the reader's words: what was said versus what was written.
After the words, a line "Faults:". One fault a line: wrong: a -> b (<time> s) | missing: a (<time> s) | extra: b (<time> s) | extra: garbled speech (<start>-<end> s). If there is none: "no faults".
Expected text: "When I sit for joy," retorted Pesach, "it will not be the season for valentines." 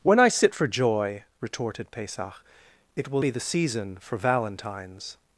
"When I sit for joy," retorted Pesach, "it will be the season for valentines."
Faults:
missing: not (3.2 s)